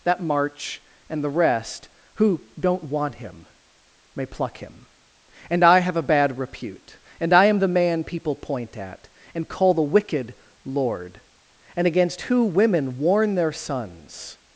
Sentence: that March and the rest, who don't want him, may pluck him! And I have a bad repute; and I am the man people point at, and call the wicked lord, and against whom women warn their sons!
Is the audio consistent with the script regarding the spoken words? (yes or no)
no